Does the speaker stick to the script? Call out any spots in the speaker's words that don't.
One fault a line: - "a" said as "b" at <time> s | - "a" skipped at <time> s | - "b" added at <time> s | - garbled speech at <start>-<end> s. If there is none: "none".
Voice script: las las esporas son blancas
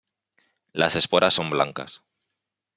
- "las" skipped at 0.9 s